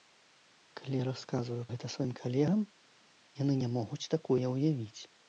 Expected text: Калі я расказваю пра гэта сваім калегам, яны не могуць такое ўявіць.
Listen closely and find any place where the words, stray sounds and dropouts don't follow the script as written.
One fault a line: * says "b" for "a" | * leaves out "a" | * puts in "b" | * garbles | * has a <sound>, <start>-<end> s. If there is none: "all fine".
* leaves out "пра"